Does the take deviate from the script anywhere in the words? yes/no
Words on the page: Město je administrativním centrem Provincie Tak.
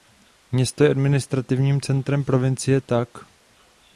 no